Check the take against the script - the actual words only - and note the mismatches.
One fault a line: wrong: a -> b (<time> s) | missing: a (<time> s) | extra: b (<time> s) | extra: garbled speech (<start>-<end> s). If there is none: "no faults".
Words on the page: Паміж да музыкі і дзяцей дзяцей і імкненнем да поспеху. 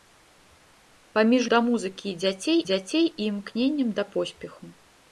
no faults